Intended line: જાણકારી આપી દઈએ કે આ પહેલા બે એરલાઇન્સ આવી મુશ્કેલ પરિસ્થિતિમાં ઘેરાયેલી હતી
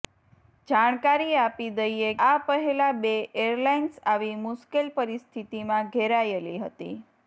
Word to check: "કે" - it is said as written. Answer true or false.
false